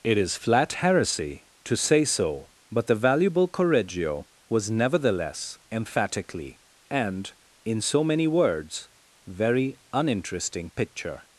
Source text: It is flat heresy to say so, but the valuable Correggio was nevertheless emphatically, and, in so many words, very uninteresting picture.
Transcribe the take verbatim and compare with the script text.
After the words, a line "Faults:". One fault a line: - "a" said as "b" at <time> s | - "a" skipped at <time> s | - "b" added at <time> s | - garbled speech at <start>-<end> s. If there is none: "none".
It is flat heresy to say so, but the valuable Correggio was nevertheless emphatically, and, in so many words, very uninteresting picture.
Faults:
none